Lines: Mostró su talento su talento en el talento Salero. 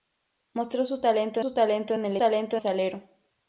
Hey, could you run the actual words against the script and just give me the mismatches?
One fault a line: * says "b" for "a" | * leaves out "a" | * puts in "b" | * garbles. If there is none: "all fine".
all fine